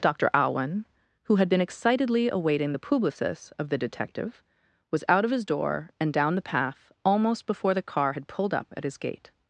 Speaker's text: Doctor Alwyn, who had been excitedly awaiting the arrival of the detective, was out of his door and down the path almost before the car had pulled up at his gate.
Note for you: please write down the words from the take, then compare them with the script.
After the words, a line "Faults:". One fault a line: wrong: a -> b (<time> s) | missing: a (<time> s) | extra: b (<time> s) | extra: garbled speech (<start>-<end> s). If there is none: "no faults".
Doctor Alwyn, who had been excitedly awaiting the publicis of the detective, was out of his door and down the path almost before the car had pulled up at his gate.
Faults:
wrong: arrival -> publicis (2.8 s)